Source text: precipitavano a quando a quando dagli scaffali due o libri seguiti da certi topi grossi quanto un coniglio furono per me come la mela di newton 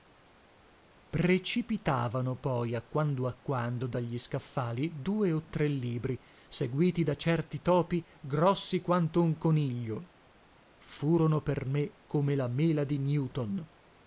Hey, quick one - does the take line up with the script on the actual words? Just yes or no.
no